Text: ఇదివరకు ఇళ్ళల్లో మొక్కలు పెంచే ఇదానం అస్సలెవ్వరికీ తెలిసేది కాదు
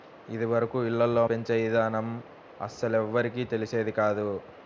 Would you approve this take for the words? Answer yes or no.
no